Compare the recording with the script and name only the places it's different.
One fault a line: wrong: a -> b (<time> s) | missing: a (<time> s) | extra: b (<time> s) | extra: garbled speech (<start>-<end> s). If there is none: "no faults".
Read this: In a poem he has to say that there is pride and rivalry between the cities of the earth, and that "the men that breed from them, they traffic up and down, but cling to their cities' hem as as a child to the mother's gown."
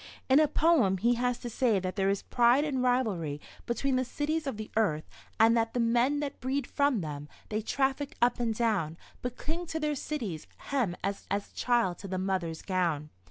no faults